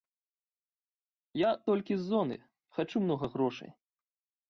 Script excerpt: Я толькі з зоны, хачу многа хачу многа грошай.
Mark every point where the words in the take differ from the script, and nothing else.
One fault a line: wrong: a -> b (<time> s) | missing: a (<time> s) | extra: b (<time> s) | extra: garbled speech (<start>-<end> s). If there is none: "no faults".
missing: хачу многа (3.3 s)